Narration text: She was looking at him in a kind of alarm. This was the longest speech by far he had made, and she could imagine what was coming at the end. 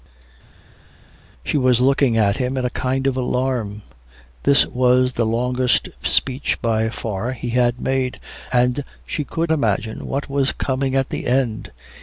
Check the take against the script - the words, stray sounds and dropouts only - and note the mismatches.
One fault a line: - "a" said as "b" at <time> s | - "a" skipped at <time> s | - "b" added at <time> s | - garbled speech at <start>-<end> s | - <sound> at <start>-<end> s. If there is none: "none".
none